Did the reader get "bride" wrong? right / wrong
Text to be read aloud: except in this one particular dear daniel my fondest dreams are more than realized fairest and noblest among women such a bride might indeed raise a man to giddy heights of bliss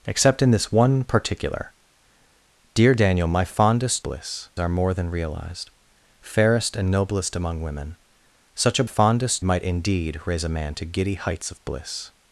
wrong